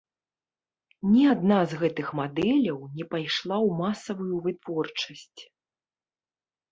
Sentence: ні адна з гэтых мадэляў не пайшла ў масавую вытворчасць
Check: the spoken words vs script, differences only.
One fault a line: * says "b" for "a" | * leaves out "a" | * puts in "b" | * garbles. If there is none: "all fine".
all fine